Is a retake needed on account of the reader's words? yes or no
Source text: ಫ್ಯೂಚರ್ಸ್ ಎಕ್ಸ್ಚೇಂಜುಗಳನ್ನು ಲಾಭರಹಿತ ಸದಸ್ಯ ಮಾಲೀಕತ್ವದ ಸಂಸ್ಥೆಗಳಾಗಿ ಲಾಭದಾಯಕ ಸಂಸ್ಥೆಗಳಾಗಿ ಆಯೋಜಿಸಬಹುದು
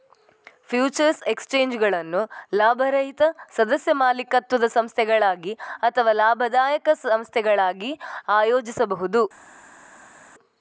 yes